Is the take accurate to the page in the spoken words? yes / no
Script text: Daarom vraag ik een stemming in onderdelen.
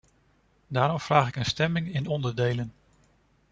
yes